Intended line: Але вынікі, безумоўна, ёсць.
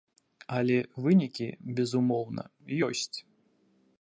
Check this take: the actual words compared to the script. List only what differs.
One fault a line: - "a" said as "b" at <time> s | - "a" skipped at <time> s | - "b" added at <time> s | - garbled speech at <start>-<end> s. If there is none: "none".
none